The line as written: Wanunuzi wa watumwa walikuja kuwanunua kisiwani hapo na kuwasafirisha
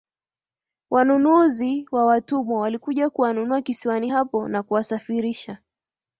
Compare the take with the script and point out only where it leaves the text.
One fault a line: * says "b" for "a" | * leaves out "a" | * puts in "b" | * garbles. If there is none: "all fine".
all fine